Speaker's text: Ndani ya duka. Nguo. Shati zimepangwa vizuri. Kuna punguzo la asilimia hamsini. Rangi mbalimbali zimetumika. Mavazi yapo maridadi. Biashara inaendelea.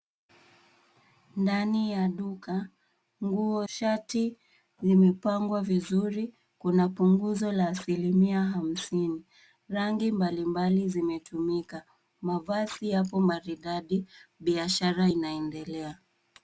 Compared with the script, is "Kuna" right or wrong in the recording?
right